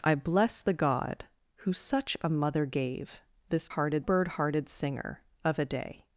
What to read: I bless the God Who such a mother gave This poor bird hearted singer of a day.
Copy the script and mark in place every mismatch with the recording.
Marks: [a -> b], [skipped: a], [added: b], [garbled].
I bless the God Who such a mother gave This [poor -> hearted] bird hearted singer of a day.